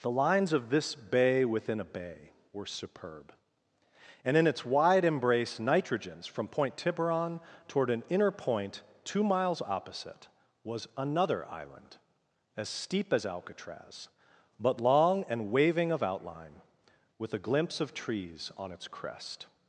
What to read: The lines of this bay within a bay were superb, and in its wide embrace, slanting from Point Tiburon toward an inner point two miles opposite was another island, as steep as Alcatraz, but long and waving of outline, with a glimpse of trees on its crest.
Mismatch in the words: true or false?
true